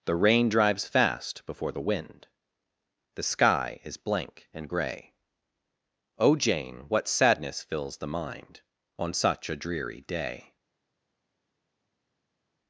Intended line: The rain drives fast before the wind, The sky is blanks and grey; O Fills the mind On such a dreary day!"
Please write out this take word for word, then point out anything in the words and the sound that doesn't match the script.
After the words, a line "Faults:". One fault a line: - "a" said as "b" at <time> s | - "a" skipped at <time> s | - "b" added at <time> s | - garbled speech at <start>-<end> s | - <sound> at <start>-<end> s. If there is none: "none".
The rain drives fast before the wind, The sky is blank and grey; O Jane, what sadness fills the mind On such a dreary day!"
Faults:
- "blanks" said as "blank" at 4.0 s
- "Jane what sadness" added at 6.4 s